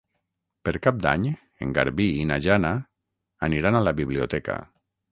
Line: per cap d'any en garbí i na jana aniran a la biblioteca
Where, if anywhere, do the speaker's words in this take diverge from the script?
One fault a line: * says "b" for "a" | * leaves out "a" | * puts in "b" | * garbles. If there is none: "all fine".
all fine